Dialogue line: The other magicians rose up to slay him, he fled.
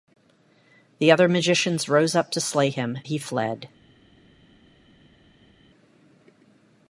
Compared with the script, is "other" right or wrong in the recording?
right